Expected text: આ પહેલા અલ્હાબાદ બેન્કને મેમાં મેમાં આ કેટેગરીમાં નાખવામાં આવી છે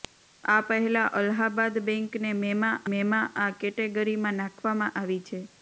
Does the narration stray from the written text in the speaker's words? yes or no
no